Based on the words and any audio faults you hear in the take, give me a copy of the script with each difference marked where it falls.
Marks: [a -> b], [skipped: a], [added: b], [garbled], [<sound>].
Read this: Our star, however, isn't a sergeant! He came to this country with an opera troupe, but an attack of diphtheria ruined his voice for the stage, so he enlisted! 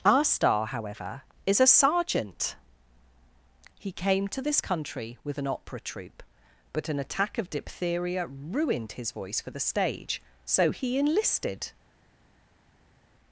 Our star, however, [isn't -> is] a sergeant! He came to this country with an opera troupe, but an attack of diphtheria ruined his voice for the stage, so he enlisted!